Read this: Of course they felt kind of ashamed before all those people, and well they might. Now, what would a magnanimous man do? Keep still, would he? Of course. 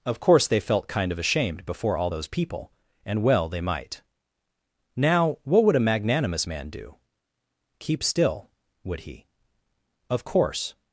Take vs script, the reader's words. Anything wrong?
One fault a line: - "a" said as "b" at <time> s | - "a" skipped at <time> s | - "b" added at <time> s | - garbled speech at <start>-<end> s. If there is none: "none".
none